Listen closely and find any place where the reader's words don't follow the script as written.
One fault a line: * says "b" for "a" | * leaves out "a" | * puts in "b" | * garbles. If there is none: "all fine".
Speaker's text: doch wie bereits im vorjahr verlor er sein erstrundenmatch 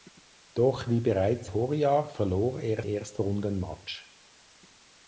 * leaves out "im"
* leaves out "sein"